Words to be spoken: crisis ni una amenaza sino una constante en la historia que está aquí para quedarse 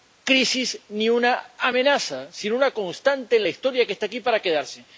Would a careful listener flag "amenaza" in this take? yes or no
no